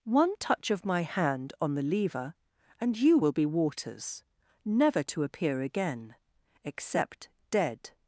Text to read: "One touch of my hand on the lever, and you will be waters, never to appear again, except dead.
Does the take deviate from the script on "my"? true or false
false